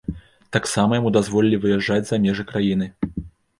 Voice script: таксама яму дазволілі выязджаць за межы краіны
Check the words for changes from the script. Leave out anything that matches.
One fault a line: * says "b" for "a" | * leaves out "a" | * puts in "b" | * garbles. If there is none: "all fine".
all fine